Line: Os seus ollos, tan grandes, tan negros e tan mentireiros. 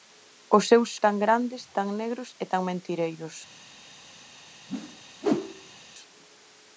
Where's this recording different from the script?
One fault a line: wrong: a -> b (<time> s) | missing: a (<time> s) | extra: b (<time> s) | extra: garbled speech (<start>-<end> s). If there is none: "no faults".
missing: ollos (0.9 s)